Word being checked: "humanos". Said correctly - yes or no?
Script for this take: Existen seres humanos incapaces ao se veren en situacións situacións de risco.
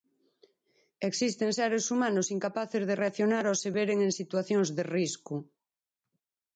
yes